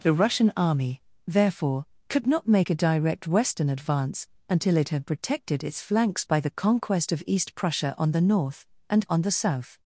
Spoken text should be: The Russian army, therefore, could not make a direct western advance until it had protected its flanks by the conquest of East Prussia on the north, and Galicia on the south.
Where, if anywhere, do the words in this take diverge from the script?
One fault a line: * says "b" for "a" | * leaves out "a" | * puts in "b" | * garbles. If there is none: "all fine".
* leaves out "Galicia"